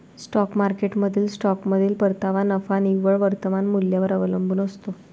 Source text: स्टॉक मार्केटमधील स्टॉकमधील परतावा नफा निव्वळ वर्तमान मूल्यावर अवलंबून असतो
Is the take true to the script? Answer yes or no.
yes